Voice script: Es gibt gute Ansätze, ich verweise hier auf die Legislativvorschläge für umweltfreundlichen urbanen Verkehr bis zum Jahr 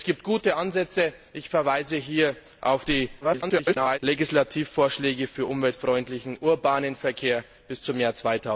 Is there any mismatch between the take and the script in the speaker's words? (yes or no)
yes